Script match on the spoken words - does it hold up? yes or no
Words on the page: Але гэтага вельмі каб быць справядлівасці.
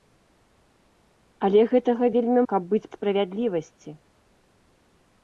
yes